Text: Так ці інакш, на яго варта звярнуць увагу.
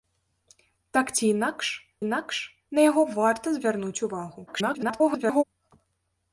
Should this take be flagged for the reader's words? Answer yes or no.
yes